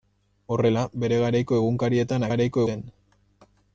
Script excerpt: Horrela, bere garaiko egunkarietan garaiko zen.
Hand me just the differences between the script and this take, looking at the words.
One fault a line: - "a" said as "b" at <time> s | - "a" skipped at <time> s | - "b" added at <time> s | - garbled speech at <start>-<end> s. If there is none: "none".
none